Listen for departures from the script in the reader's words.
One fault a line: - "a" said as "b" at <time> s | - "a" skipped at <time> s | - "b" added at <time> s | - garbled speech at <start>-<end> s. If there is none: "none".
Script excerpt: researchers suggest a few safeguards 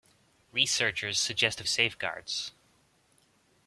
- "few" skipped at 1.6 s